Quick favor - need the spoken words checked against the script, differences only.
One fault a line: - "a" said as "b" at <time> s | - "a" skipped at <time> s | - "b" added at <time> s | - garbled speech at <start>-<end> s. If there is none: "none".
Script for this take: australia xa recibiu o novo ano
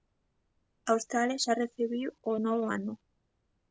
none